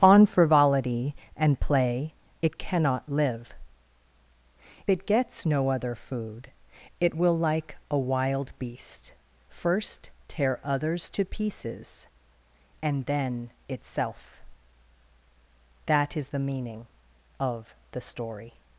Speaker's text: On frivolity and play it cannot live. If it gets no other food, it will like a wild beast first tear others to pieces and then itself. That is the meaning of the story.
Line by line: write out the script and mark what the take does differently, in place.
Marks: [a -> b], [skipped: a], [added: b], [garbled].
On frivolity and play it cannot live. [skipped: If] it gets no other food, it will like a wild beast first tear others to pieces and then itself. That is the meaning of the story.